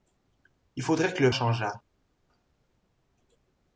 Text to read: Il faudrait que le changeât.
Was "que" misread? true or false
false